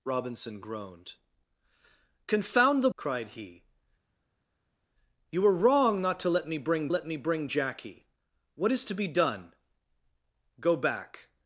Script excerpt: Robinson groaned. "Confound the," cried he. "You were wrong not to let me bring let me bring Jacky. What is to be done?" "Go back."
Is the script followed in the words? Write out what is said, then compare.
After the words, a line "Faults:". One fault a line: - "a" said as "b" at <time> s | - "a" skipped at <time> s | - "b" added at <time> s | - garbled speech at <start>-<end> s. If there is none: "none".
Robinson groaned. "Confound the," cried he. "You were wrong not to let me bring let me bring Jacky. What is to be done?" "Go back."
Faults:
none